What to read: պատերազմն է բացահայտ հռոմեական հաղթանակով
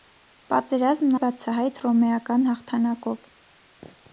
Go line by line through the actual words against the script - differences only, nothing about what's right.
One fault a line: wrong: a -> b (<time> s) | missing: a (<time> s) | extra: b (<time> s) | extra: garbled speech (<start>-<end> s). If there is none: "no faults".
no faults